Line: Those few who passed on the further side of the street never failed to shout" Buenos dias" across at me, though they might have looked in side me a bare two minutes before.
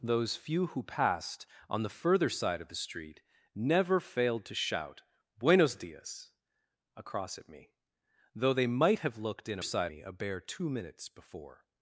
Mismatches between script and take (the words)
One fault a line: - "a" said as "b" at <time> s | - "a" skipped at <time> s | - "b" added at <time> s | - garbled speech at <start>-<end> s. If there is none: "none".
none